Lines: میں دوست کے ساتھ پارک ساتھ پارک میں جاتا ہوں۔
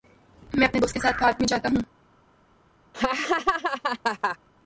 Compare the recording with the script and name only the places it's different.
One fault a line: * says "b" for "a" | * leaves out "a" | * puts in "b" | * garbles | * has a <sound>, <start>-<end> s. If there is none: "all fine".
* puts in "اپنے"
* leaves out "ساتھ پارک"
* has a laugh, 2.9-4.4 s